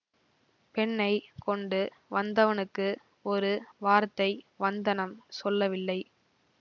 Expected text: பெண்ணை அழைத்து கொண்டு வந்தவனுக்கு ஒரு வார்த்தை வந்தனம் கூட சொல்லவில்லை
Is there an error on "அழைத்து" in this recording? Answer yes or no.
yes